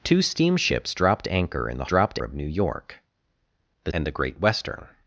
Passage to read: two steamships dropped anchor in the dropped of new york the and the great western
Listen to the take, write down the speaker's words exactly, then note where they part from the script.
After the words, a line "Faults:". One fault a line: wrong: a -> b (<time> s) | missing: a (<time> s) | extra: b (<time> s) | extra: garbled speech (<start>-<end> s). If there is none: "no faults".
two steamships dropped anchor in the dropped of new york the and the great western
Faults:
no faults